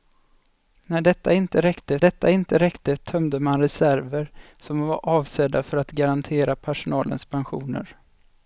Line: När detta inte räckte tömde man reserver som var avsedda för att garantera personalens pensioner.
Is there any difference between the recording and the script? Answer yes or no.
yes